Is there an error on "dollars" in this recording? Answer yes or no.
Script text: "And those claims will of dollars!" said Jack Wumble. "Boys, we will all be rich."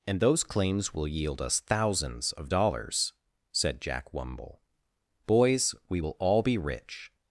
no